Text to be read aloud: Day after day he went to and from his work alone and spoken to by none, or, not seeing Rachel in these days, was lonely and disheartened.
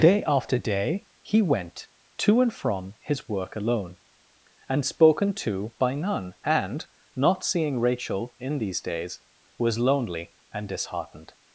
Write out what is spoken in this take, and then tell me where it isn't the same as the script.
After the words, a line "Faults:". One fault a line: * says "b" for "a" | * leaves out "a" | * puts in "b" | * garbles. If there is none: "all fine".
Day after day he went to and from his work alone and spoken to by none, and, not seeing Rachel in these days, was lonely and disheartened.
Faults:
* says "and" for "or"